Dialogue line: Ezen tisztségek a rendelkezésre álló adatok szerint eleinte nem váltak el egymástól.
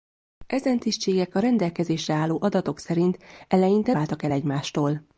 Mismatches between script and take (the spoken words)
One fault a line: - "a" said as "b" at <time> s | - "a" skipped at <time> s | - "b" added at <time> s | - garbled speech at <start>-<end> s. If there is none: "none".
- "nem" skipped at 3.9 s